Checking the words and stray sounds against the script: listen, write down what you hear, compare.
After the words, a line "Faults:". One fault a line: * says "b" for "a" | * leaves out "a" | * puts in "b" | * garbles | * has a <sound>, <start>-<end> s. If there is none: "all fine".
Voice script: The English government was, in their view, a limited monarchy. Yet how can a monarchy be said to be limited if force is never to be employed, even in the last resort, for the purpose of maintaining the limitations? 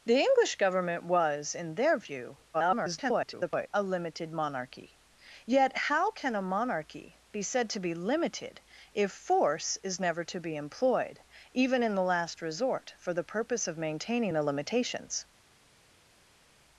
The English government was, in their view, [garbled] a limited monarchy. Yet how can a monarchy be said to be limited if force is never to be employed, even in the last resort, for the purpose of maintaining the limitations?
Faults:
* garbles